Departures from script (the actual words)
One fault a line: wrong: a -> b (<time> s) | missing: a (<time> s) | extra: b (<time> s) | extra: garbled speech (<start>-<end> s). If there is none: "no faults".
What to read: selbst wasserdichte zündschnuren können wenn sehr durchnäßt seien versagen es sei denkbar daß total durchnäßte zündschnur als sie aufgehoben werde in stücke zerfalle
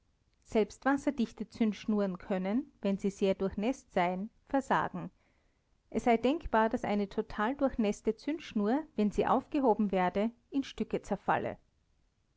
extra: sie (3.0 s)
extra: eine (6.8 s)
wrong: als -> wenn (9.0 s)